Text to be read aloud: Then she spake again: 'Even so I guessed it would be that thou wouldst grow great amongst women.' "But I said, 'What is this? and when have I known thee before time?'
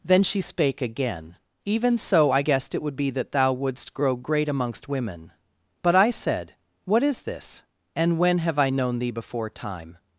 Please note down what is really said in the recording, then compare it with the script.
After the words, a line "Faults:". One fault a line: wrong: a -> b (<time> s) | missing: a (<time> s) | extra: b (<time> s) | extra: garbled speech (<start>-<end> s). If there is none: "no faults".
Then she spake again: 'Even so I guessed it would be that thou wouldst grow great amongst women.' "But I said, 'What is this? and when have I known thee before time?'
Faults:
no faults